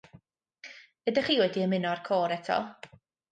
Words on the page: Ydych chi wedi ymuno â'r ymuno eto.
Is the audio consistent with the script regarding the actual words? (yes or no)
no